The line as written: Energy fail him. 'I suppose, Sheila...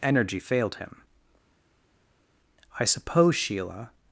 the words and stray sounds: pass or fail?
fail